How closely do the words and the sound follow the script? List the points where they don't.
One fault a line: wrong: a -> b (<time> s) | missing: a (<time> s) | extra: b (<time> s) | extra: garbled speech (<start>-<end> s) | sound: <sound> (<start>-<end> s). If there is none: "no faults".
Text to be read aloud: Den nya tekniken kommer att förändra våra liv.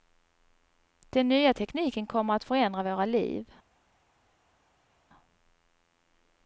no faults